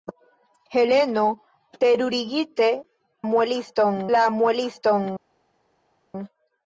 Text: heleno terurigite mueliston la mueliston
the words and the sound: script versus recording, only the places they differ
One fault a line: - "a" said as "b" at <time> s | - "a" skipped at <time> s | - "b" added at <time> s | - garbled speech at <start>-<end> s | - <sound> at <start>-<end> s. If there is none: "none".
none